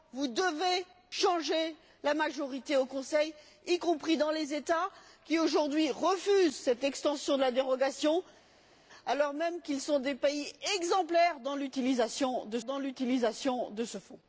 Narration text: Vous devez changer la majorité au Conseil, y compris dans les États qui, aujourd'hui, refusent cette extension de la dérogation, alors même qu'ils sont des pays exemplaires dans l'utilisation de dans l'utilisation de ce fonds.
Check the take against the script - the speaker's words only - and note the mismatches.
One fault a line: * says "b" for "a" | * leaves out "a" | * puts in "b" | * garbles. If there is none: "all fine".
all fine